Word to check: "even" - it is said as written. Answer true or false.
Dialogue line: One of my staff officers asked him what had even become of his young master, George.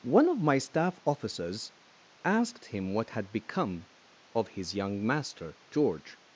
false